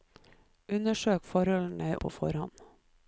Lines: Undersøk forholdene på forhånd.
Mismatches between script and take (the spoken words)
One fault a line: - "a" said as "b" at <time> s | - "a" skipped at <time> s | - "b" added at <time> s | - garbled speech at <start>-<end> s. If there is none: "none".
none